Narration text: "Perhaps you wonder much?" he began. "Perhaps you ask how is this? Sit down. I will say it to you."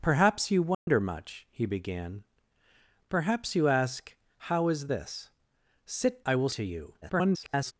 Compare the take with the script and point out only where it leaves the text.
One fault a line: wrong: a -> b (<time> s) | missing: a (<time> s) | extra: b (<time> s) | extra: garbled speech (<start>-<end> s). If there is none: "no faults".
missing: down (6.2 s)
missing: say it (6.5 s)
extra: garbled speech (7.0-7.7 s)